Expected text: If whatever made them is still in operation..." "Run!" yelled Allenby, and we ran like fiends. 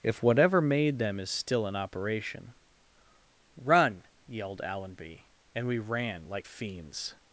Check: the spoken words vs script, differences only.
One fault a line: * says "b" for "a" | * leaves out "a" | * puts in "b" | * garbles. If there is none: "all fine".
all fine